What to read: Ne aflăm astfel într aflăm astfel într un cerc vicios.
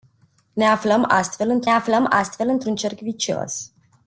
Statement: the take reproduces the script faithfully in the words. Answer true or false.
true